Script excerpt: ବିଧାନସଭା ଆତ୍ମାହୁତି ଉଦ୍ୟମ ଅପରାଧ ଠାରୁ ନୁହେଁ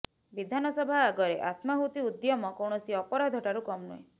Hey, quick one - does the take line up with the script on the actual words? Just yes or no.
no